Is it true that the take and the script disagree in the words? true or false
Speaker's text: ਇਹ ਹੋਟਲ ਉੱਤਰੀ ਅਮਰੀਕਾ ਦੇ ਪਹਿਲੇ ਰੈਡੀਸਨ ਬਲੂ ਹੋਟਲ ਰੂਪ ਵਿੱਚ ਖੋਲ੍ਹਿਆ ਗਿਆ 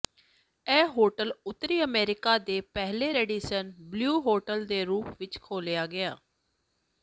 true